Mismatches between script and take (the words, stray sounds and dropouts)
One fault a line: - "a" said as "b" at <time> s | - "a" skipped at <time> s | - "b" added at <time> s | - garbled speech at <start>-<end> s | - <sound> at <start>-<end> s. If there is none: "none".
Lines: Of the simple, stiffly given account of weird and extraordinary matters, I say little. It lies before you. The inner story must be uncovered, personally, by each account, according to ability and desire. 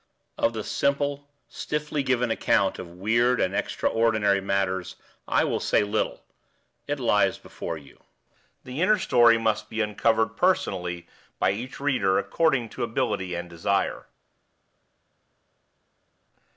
- "will" added at 5.4 s
- "account" said as "reader" at 11.8 s